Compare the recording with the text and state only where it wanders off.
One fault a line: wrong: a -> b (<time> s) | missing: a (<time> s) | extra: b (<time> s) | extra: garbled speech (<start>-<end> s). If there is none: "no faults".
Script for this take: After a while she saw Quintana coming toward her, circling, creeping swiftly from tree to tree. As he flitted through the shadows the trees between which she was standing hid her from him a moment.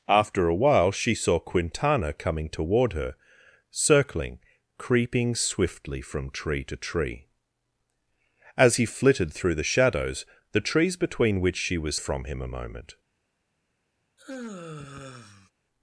missing: standing hid her (12.0 s)